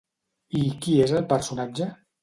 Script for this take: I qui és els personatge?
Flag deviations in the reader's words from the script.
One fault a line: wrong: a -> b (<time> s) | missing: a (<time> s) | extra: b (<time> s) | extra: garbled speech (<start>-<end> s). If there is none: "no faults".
wrong: els -> el (1.2 s)